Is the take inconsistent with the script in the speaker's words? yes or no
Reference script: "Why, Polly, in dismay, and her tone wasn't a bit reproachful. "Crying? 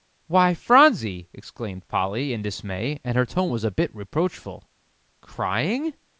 yes